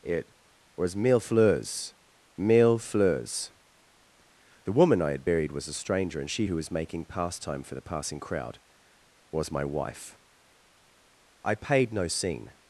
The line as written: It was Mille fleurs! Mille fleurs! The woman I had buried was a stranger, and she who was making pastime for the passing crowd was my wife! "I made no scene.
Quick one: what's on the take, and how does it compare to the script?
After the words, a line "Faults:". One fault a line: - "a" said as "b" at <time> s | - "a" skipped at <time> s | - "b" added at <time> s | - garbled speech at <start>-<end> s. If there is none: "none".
It was Mille fleurs! Mille fleurs! The woman I had buried was a stranger, and she who was making pastime for the passing crowd was my wife! "I paid no scene.
Faults:
- "made" said as "paid" at 11.5 s